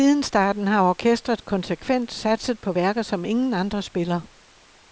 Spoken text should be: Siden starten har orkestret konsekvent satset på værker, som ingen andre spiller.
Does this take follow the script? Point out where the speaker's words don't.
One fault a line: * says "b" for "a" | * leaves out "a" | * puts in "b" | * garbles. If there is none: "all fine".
all fine